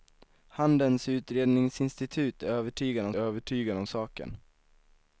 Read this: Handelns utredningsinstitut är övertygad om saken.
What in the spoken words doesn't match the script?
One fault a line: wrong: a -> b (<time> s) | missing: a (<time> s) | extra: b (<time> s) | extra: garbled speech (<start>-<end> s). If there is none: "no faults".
extra: övertygad om (3.2 s)